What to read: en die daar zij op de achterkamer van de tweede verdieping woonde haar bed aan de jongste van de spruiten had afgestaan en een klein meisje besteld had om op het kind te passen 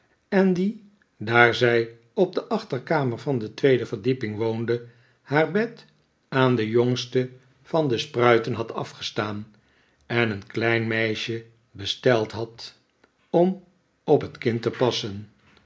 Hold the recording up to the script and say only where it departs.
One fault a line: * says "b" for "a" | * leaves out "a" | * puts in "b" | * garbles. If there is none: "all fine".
all fine